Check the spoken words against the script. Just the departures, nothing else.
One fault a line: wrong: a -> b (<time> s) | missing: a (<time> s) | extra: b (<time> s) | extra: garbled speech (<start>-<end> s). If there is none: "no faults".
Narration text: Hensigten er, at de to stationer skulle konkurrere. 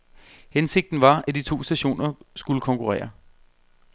wrong: er -> var (1.0 s)